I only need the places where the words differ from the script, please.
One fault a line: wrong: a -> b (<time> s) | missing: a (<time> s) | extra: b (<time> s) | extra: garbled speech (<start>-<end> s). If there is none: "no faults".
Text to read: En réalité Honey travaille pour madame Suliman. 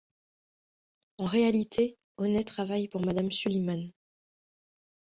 no faults